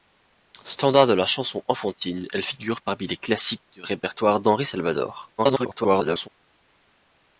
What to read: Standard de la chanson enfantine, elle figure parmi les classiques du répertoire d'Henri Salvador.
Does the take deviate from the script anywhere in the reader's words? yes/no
yes